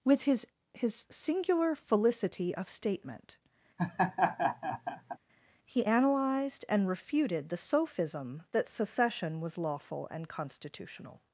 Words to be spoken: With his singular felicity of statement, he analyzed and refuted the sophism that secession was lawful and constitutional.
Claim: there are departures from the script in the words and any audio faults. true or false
true